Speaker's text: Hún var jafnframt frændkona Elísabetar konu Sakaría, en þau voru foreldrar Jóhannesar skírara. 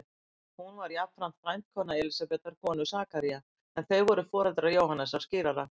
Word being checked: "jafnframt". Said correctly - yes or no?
yes